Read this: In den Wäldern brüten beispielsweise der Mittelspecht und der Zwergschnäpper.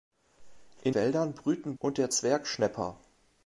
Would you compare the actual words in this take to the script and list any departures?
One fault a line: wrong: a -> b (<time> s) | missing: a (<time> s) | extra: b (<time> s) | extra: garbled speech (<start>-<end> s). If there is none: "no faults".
missing: den (0.9 s)
missing: beispielsweise der Mittelspecht (1.8 s)